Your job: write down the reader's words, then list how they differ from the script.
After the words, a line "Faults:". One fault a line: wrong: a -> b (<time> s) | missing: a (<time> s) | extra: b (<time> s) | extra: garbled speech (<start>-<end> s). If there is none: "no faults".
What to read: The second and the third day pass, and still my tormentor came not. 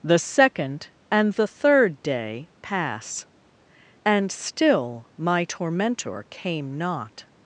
The second and the third day pass, and still my tormentor came not.
Faults:
no faults